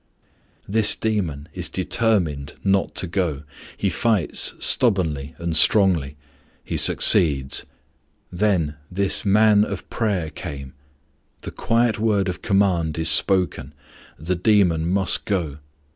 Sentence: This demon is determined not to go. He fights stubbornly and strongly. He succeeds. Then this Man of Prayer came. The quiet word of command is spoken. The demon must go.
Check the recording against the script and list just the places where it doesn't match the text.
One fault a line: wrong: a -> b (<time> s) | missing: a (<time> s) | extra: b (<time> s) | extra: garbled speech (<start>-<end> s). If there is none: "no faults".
no faults